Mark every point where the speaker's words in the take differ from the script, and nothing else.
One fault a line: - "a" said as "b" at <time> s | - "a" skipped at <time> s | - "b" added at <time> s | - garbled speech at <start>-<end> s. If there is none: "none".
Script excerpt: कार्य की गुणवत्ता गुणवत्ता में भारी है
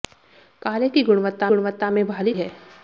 none